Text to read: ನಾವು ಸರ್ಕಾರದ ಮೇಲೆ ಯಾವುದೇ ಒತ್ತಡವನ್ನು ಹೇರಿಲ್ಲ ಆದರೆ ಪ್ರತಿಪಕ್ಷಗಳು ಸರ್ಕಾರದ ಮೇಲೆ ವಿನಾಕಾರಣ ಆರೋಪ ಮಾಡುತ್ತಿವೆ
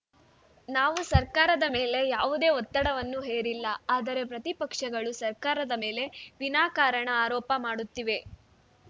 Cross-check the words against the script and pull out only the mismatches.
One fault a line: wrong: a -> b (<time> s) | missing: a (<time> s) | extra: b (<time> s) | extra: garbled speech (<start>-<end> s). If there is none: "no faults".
no faults